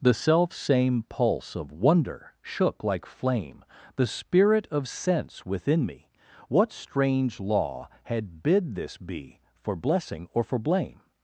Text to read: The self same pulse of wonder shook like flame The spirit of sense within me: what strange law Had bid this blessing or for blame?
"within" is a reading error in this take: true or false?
false